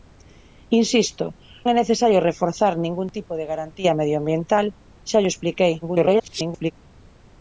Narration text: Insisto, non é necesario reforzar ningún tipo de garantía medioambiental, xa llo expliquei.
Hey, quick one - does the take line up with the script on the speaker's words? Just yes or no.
no